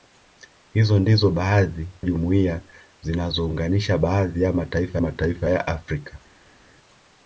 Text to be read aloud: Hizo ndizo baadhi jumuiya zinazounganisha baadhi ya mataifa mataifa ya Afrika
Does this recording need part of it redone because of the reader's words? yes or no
no